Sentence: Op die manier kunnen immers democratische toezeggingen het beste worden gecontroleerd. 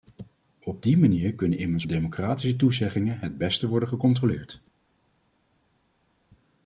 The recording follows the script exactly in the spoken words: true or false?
true